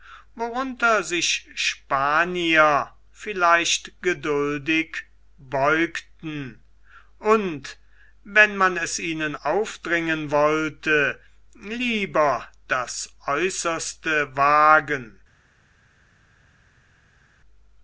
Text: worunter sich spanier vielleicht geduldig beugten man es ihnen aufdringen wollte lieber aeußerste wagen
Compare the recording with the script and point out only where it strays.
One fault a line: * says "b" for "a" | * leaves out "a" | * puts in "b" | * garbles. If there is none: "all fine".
* puts in "und wenn"
* puts in "das"